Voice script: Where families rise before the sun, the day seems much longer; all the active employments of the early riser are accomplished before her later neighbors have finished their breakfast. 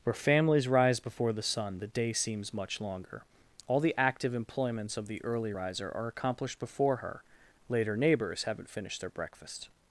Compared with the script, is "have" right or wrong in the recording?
wrong